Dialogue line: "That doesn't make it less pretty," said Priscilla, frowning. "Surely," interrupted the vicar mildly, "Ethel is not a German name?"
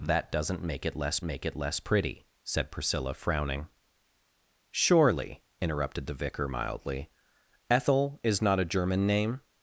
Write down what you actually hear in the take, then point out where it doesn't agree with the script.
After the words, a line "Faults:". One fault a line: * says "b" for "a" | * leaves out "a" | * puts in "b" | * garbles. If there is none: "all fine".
"That doesn't make it less make it less pretty," said Priscilla, frowning. "Surely," interrupted the vicar mildly, "Ethel is not a German name?"
Faults:
* puts in "make it less"